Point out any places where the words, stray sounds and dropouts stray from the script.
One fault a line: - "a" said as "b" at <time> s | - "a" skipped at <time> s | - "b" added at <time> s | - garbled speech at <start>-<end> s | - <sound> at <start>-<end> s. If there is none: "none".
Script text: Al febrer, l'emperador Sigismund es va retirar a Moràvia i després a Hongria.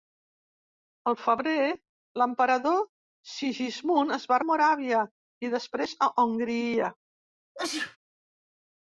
- "retirar" skipped at 4.4 s
- sneeze at 7.5-8.0 s